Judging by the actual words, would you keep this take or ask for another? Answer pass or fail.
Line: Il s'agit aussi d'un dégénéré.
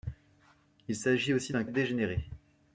pass